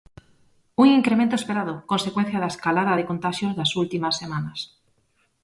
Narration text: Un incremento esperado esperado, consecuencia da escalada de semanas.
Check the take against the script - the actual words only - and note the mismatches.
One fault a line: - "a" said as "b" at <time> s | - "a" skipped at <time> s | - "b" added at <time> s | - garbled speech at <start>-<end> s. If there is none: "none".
- "esperado" skipped at 1.7 s
- "contaxios das últimas" added at 3.1 s